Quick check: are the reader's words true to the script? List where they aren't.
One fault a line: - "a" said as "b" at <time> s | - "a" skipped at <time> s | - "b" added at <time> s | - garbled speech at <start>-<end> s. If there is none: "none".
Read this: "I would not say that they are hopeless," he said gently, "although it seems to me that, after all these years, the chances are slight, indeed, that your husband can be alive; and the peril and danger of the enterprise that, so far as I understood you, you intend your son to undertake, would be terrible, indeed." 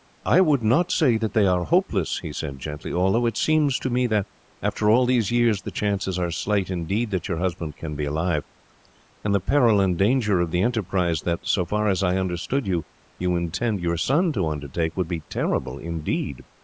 none